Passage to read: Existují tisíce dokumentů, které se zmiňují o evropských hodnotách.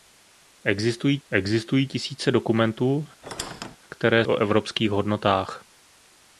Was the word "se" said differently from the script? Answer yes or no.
yes